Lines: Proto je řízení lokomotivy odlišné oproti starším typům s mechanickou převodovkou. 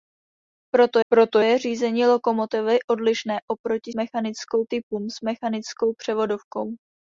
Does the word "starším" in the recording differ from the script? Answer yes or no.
yes